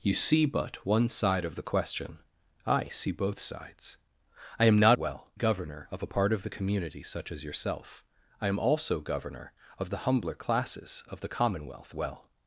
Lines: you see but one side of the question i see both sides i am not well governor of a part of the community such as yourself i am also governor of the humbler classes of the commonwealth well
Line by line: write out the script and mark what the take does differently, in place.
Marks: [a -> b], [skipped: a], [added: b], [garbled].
you see but one side of the question i see both sides i am not well governor of a part of the community such as yourself i am also governor of the humbler classes of the commonwealth well